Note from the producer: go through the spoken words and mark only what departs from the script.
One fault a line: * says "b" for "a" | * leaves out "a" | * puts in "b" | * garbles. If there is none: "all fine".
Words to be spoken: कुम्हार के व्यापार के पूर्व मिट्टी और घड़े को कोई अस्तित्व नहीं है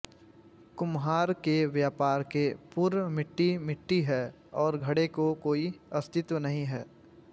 * puts in "मिट्टी है"